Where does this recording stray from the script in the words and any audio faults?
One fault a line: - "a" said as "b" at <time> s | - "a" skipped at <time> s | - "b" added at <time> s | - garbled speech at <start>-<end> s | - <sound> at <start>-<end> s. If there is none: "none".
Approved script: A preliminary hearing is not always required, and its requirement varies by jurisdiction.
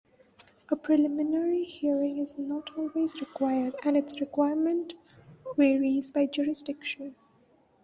none